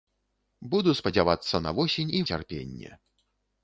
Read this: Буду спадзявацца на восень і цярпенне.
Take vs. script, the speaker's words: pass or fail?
pass